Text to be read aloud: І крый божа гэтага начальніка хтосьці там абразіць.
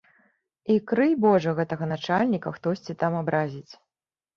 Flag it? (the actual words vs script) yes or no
no